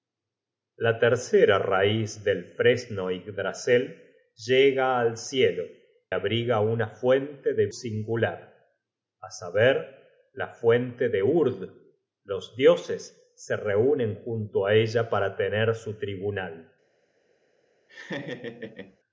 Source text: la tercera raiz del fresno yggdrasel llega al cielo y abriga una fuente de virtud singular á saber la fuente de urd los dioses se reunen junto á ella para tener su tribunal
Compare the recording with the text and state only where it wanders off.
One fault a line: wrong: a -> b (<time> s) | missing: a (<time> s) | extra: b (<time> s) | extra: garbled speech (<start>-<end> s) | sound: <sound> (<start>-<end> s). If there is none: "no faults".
missing: y (5.7 s)
missing: virtud (7.7 s)
sound: laugh (17.9-19.0 s)